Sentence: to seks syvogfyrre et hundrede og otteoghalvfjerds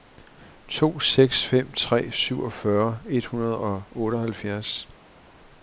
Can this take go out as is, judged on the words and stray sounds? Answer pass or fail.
fail